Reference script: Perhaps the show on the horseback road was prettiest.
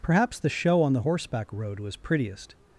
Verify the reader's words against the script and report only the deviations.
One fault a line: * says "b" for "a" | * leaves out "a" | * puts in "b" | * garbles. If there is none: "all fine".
all fine